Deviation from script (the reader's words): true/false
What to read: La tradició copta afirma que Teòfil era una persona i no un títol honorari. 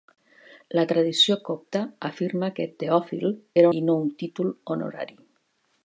true